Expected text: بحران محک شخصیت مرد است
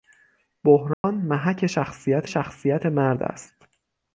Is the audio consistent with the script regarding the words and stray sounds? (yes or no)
no